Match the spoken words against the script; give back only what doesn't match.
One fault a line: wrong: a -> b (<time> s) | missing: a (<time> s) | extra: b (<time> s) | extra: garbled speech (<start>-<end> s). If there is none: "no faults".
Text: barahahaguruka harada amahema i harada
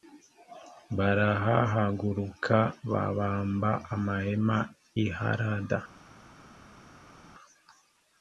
wrong: harada -> babamba (2.9 s)